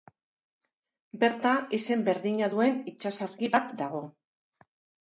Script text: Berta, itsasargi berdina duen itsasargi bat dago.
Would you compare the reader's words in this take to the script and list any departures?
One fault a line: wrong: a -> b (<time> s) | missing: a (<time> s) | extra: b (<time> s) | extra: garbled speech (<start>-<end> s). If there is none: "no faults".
wrong: itsasargi -> izen (1.8 s)